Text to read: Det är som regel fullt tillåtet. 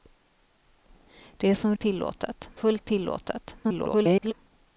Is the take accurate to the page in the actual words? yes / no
no